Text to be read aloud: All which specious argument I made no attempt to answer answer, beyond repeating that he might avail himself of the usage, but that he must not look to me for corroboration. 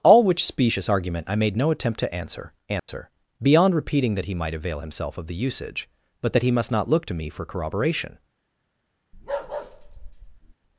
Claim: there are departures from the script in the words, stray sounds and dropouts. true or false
true